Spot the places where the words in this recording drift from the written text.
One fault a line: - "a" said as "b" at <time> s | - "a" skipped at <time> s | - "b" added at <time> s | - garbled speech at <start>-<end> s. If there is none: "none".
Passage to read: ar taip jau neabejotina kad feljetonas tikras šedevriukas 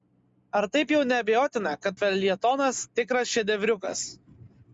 none